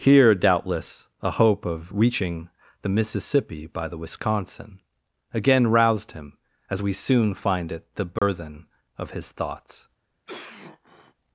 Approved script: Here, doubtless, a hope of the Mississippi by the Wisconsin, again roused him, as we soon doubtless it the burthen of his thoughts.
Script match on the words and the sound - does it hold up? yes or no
no